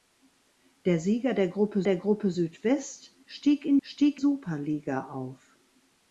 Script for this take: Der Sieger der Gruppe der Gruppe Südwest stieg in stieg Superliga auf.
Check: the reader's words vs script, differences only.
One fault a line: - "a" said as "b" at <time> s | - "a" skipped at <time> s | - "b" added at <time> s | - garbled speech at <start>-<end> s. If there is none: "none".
none